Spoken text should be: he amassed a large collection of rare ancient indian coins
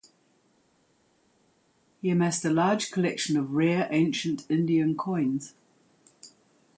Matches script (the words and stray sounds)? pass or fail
pass